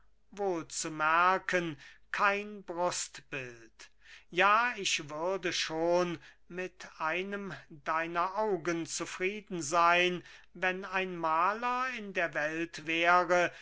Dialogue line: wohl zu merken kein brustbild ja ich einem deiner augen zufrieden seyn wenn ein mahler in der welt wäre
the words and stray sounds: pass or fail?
fail